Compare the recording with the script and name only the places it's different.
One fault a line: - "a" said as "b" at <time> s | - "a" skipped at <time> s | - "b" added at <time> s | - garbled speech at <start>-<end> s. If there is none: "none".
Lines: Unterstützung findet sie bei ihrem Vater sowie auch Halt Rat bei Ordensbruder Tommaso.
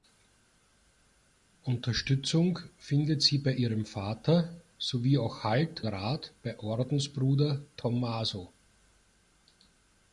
none